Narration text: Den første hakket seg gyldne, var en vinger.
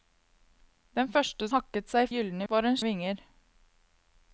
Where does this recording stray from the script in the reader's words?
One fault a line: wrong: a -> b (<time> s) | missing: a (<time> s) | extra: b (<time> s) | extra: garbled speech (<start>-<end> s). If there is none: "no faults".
no faults